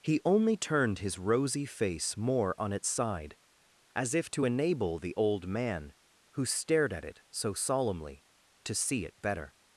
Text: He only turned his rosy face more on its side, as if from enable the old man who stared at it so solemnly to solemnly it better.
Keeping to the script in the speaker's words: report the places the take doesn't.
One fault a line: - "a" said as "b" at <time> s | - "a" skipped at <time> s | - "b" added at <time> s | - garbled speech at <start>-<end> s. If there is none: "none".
- "from" said as "to" at 4.3 s
- "solemnly" said as "see" at 8.7 s